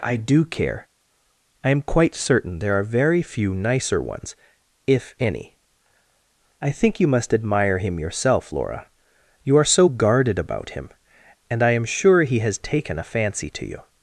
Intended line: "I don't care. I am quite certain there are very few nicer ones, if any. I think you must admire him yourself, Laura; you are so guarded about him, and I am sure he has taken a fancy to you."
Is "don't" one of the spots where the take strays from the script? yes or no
yes